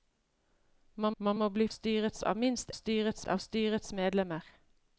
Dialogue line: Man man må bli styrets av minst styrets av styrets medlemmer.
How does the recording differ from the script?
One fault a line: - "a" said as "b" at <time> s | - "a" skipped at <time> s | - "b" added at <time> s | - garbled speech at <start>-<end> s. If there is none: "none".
none